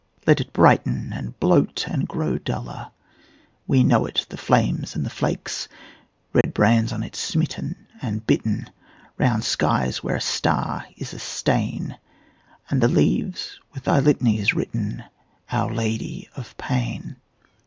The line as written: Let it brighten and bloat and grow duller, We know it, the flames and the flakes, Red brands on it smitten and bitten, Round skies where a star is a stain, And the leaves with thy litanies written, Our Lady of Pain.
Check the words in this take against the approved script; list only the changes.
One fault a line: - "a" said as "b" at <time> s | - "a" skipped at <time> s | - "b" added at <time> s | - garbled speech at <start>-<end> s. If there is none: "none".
none